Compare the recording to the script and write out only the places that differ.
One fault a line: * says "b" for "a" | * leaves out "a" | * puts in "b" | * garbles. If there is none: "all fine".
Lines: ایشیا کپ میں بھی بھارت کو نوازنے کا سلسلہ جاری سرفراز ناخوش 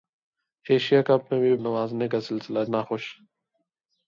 * leaves out "بھارت کو"
* leaves out "جاری سرفراز"